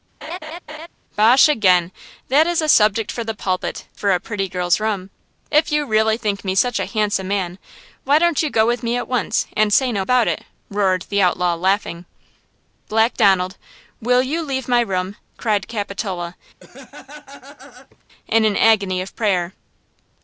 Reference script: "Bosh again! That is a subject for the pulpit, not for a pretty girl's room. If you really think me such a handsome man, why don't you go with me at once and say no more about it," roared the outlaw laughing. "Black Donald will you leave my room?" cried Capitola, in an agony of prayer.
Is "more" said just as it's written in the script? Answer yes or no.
no